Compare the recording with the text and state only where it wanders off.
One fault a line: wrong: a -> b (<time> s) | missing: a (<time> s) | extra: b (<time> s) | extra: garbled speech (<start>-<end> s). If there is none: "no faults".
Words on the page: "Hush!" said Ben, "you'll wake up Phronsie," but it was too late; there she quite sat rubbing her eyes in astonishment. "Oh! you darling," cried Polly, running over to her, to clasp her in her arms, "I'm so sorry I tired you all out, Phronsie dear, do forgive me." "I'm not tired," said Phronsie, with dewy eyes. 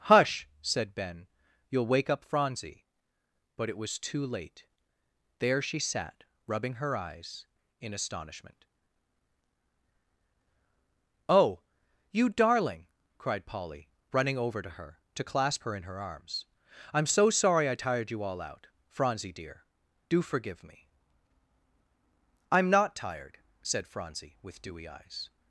missing: quite (5.8 s)